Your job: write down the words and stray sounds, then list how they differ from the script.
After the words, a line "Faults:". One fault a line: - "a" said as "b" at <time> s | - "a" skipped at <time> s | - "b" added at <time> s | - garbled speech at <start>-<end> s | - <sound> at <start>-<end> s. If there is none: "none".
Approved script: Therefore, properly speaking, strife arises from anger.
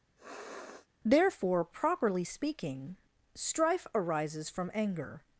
Therefore, properly speaking, strife arises from anger.
Faults:
- sniff at 0.2-0.9 s